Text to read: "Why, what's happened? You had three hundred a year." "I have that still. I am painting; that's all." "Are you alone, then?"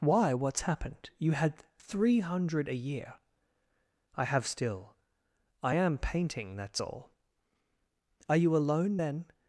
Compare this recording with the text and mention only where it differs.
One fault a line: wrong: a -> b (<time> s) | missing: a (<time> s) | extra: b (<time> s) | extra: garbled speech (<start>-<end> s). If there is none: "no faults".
missing: that (4.5 s)